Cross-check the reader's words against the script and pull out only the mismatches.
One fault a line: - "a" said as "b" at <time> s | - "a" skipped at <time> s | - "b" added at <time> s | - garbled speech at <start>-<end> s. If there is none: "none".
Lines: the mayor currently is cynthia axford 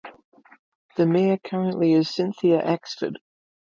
none